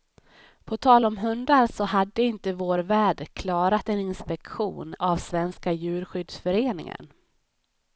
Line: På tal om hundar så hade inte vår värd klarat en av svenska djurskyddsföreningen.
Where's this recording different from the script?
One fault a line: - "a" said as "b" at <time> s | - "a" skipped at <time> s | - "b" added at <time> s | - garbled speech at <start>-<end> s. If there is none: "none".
- "inspektion" added at 4.0 s